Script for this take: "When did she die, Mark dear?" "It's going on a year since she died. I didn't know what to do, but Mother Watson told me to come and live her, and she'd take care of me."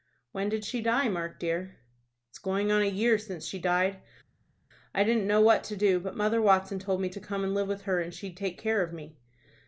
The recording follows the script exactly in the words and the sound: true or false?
false